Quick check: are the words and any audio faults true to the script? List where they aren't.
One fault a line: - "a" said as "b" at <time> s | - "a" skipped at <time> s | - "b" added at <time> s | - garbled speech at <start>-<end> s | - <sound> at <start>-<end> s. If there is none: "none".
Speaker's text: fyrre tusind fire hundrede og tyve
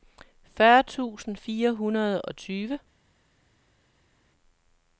none